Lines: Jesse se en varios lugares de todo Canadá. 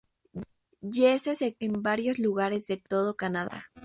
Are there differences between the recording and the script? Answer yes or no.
no